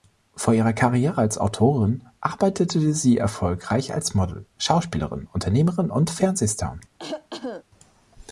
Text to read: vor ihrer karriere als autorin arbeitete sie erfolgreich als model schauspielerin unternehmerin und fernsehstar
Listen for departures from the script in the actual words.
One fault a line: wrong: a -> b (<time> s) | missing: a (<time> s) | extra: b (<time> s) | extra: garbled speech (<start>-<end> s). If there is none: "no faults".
no faults